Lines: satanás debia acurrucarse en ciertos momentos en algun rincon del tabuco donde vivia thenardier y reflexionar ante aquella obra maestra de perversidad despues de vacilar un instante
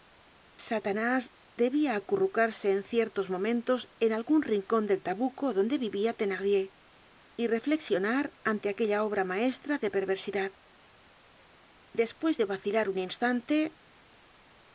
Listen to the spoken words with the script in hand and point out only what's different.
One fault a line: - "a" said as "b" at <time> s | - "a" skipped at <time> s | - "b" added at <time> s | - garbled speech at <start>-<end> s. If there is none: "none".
none